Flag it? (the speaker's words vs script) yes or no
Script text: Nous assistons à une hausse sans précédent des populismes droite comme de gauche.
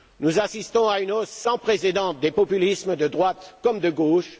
yes